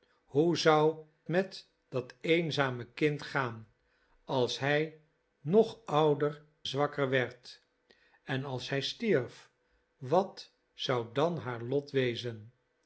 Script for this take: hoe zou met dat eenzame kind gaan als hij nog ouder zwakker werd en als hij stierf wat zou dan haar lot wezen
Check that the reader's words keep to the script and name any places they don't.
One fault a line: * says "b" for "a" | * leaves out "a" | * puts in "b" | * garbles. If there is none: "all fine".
all fine